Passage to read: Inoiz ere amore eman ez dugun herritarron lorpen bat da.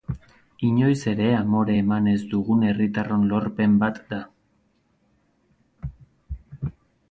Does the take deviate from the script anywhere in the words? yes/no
no